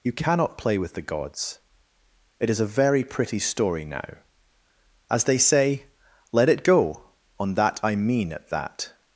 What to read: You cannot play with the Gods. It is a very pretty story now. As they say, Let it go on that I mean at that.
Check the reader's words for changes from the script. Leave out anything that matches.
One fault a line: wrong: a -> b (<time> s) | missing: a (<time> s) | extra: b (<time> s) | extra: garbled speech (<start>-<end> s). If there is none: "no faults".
no faults